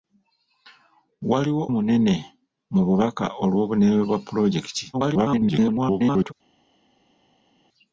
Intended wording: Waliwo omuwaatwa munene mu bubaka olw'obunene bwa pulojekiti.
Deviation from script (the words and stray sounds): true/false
true